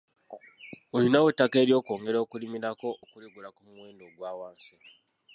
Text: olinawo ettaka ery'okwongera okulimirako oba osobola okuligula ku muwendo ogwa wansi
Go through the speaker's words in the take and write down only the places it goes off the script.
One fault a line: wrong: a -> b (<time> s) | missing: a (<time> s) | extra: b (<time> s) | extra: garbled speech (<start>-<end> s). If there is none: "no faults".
missing: oba osobola (2.9 s)